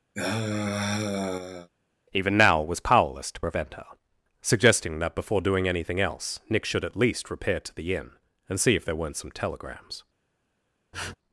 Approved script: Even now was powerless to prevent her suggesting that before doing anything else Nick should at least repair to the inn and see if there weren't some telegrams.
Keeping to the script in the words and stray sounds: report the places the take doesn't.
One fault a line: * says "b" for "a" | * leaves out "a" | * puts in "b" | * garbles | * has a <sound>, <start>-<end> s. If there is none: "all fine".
* has a sigh, 0.1-1.7 s
* has a sniff, 10.9-11.1 s